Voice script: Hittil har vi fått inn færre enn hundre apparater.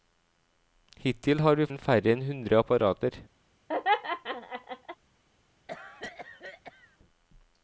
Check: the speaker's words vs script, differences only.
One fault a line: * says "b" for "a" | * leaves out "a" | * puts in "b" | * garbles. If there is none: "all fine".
* leaves out "fått"